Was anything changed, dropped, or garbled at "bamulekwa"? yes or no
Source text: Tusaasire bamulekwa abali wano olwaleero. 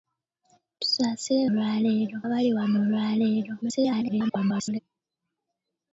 yes